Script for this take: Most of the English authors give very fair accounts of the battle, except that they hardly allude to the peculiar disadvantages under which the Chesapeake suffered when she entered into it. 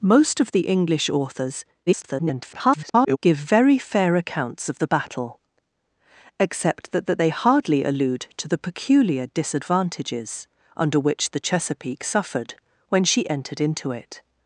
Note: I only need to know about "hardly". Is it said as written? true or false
true